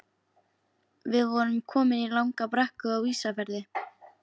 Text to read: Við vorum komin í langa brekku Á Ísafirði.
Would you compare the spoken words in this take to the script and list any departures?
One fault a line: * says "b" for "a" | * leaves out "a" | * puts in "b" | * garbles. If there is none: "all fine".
all fine